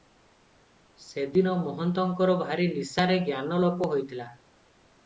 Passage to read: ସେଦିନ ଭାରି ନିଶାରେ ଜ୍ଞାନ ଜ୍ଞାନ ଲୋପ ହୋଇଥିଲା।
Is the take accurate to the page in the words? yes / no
no